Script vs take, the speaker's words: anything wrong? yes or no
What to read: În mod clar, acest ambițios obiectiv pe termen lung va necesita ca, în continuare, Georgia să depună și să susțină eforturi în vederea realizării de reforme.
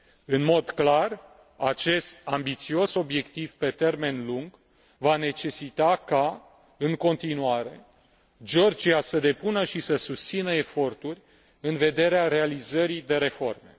no